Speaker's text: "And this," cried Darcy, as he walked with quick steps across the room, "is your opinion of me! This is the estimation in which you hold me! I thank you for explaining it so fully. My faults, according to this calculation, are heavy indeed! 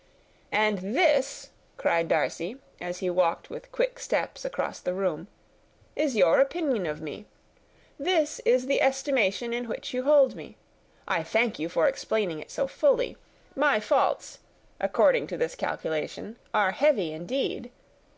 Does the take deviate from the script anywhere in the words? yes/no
no